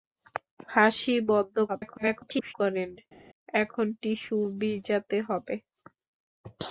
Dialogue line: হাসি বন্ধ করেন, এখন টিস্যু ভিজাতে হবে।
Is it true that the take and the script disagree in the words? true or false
true